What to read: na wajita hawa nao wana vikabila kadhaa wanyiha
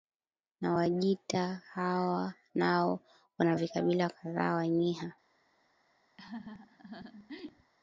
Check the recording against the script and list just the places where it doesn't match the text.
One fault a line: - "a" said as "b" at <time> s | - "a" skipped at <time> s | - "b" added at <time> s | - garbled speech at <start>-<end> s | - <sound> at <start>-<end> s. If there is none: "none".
- laugh at 6.2-7.7 s